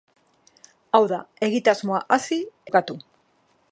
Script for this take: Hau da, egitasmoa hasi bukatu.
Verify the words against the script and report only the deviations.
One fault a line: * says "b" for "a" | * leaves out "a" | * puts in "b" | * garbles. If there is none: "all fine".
all fine